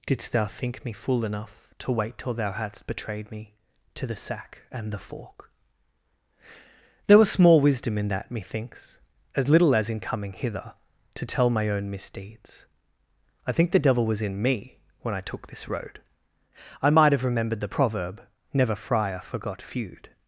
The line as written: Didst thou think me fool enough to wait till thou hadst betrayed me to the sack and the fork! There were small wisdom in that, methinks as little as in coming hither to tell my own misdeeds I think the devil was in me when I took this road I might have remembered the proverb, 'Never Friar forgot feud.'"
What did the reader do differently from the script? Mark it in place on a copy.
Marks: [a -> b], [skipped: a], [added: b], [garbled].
Didst thou think me fool enough to wait till thou hadst betrayed me to the sack and the fork! There [were -> was] small wisdom in that, methinks as little as in coming hither to tell my own misdeeds I think the devil was in me when I took this road I might have remembered the proverb, 'Never Friar forgot feud.'"